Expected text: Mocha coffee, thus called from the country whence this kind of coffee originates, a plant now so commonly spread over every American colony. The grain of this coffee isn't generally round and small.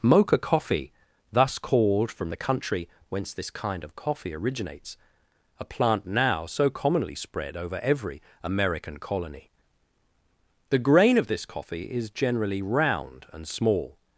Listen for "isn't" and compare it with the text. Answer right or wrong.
wrong